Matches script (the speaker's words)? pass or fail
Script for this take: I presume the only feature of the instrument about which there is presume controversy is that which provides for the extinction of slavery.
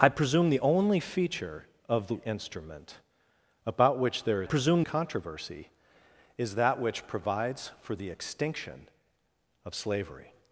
pass